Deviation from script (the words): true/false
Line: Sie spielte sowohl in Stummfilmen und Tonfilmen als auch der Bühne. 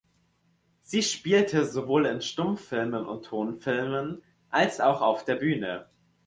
true